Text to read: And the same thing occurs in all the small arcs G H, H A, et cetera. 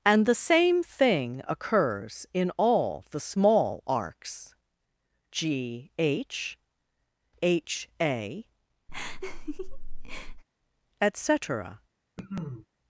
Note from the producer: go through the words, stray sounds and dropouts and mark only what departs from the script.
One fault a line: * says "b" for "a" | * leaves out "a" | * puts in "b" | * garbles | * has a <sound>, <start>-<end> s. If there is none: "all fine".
* has a laugh, 8.9-10.4 s
* has a cough, 12.2-12.7 s